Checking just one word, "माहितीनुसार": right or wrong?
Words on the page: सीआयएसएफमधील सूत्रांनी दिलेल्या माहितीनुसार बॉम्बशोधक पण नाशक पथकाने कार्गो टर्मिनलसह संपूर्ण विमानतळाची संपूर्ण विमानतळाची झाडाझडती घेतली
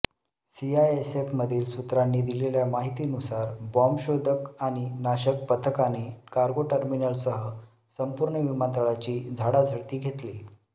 right